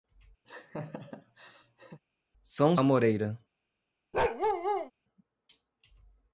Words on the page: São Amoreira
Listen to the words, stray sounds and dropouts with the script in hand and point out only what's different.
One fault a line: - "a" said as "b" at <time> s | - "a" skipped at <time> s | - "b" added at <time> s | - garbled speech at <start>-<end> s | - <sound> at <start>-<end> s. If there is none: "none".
- laugh at 0.4-2.0 s
- bark at 4.1-4.9 s